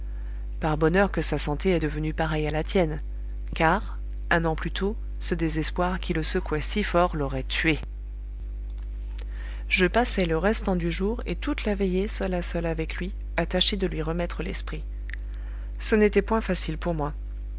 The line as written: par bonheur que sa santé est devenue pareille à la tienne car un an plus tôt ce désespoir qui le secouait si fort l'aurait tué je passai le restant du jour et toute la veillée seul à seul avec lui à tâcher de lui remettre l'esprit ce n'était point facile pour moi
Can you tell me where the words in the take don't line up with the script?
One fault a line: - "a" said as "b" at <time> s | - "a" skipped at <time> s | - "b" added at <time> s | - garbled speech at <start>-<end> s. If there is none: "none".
none